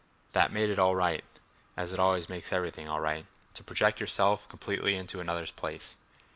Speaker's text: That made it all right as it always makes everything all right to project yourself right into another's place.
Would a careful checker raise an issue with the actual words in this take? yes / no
yes